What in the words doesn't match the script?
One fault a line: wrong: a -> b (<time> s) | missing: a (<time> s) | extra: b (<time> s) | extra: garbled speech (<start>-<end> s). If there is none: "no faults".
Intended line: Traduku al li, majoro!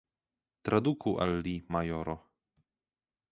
no faults